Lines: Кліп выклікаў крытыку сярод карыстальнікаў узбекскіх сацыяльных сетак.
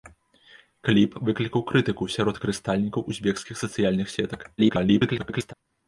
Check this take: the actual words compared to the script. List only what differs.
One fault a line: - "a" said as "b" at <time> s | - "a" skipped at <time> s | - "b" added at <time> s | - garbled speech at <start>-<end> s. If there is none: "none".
- garbled speech at 4.6-5.5 s